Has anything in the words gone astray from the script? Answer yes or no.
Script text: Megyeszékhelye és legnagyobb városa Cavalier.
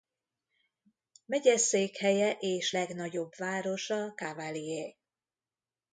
no